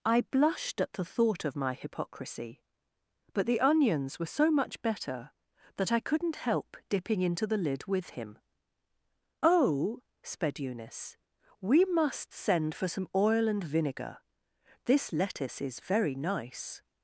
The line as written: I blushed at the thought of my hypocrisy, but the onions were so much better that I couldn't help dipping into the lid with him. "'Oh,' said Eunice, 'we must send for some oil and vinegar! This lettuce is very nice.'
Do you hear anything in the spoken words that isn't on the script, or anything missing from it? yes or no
yes